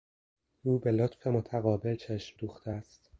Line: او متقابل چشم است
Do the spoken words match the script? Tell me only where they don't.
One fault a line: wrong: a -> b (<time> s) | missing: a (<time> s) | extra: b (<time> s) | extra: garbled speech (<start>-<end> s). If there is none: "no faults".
extra: به لطف (0.8 s)
extra: دوخته (2.4 s)